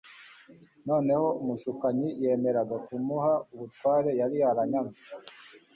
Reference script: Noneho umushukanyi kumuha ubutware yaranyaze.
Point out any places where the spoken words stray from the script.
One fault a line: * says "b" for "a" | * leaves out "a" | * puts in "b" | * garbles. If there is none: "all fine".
* puts in "yemeraga"
* puts in "yari"